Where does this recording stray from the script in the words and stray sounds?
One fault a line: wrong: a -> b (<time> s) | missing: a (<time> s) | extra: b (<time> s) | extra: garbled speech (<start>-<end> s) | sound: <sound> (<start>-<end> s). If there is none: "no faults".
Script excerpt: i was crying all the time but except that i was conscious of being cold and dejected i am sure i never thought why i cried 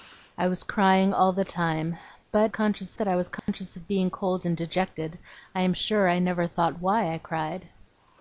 wrong: except -> conscious (2.5 s)
sound: dropout (3.4-3.5 s)